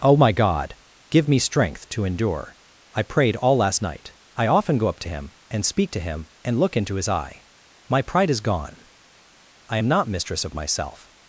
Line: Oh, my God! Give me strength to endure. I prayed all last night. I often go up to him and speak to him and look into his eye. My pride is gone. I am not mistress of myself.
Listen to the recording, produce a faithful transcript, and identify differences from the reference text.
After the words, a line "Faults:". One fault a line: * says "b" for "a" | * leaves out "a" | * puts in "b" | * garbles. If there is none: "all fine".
Oh, my God! Give me strength to endure. I prayed all last night. I often go up to him and speak to him and look into his eye. My pride is gone. I am not mistress of myself.
Faults:
all fine